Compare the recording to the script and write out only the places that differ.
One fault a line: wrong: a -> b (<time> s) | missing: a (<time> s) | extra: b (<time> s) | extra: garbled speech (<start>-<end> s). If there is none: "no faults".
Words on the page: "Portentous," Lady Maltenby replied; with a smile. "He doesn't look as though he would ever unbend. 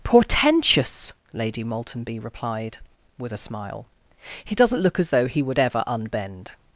no faults